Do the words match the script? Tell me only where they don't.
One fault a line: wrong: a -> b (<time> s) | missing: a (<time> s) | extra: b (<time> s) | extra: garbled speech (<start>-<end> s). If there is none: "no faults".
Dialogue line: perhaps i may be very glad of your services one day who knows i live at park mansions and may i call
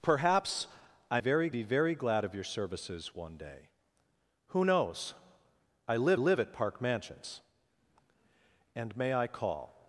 wrong: may -> very (1.2 s)
extra: live (6.2 s)